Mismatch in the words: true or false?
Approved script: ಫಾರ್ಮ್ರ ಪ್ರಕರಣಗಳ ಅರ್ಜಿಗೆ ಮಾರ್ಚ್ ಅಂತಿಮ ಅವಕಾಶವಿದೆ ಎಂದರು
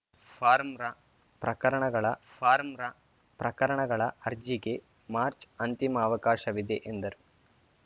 true